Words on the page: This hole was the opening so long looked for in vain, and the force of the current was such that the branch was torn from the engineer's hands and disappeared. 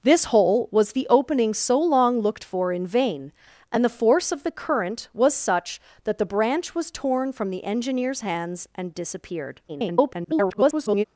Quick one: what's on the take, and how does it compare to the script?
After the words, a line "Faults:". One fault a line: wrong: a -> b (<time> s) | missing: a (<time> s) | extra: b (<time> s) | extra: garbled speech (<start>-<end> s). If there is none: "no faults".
This hole was the opening so long looked for in vain, and the force of the current was such that the branch was torn from the engineer's hands and disappeared. [garbled]
Faults:
extra: garbled speech (9.7-11.0 s)